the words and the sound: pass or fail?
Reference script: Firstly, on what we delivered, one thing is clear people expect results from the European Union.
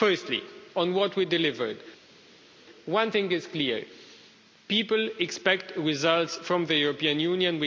pass